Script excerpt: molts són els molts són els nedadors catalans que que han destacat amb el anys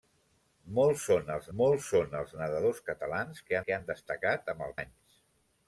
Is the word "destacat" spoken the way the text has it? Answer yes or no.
yes